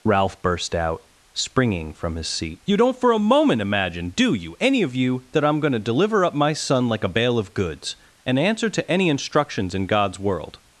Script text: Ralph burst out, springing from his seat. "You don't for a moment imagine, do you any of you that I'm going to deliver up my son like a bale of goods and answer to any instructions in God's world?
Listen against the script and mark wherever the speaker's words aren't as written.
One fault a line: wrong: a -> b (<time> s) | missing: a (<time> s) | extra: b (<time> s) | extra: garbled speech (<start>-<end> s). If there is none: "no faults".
no faults